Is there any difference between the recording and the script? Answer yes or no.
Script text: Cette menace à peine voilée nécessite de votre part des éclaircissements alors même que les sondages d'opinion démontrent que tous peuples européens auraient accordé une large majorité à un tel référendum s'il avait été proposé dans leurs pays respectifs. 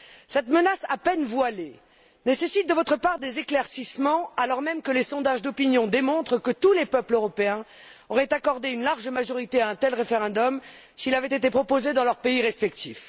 yes